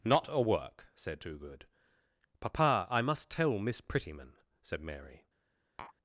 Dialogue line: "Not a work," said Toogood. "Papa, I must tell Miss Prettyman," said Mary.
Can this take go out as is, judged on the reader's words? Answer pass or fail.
pass